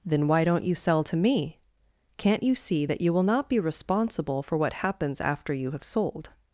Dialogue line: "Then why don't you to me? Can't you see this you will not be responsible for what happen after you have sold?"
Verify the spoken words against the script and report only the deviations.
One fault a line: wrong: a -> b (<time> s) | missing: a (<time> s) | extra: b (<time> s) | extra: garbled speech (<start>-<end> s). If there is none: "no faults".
extra: sell (0.8 s)
wrong: this -> that (2.8 s)
wrong: happen -> happens (4.7 s)